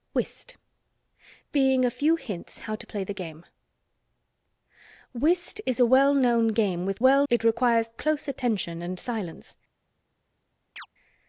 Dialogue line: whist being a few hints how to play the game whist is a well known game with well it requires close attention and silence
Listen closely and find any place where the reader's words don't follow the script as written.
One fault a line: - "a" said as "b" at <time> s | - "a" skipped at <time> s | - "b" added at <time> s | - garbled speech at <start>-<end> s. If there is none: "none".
none